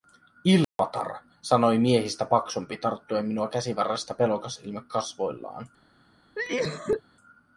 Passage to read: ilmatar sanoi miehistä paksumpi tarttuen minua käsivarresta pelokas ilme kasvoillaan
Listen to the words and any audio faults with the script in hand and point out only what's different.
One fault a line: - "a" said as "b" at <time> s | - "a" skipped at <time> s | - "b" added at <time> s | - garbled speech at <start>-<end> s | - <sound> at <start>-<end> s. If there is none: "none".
- dropout at 0.6-0.8 s
- cough at 6.3-7.0 s